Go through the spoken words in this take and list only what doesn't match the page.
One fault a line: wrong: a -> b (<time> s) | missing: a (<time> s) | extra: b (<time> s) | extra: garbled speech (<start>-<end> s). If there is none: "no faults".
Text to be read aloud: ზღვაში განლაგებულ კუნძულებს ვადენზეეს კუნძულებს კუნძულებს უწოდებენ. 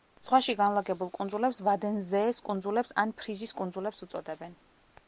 extra: ან ფრიზის (3.0 s)